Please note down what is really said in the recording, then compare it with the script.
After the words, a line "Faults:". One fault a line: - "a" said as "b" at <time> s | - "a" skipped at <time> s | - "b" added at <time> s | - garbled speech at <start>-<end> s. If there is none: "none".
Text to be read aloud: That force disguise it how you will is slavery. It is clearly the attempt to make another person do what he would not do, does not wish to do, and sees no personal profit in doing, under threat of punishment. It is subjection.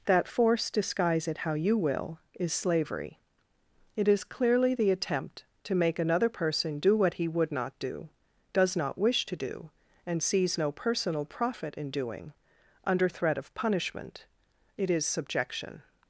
That force disguise it how you will is slavery. It is clearly the attempt to make another person do what he would not do, does not wish to do, and sees no personal profit in doing, under threat of punishment. It is subjection.
Faults:
none